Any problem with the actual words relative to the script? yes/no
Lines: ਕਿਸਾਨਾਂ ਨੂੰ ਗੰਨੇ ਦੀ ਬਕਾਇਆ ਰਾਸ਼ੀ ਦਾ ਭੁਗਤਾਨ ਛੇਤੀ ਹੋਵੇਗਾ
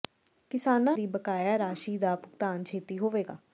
yes